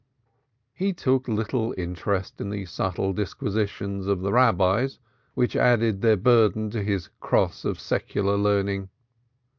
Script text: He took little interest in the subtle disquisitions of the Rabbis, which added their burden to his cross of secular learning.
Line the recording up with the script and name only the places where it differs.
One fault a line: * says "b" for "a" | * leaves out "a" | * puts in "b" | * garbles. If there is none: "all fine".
all fine